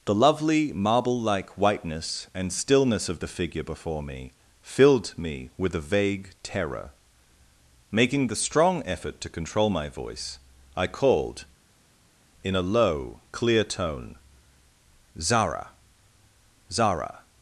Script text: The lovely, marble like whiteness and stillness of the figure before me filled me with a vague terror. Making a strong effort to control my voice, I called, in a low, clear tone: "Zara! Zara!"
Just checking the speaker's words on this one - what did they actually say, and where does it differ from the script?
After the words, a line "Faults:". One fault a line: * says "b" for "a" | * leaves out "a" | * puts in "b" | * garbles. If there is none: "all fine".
The lovely, marble like whiteness and stillness of the figure before me filled me with a vague terror. Making the strong effort to control my voice, I called, in a low, clear tone: "Zara! Zara!"
Faults:
* says "the" for "a"